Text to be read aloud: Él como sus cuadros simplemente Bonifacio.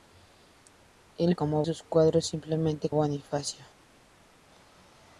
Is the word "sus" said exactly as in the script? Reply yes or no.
yes